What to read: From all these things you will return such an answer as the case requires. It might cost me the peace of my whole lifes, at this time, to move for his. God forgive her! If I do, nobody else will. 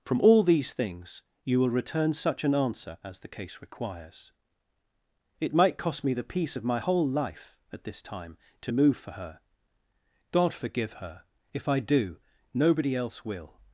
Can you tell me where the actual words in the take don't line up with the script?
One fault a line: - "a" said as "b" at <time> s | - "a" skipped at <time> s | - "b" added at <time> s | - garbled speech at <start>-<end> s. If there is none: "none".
- "lifes" said as "life" at 7.1 s
- "his" said as "her" at 9.1 s